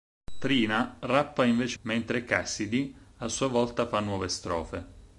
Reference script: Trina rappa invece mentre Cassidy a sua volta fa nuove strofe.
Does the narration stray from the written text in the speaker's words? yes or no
no